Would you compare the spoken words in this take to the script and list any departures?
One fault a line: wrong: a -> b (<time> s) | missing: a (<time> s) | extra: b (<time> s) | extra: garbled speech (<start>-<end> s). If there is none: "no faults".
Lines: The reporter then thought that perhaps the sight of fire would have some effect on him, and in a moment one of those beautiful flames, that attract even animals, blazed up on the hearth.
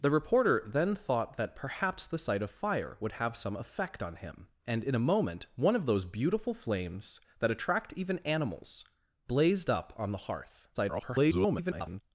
extra: garbled speech (10.7-12.0 s)